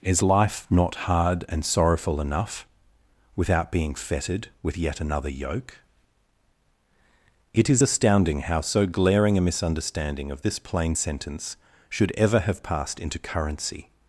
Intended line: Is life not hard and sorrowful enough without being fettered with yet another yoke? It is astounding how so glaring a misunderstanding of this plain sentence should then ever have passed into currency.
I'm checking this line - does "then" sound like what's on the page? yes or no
no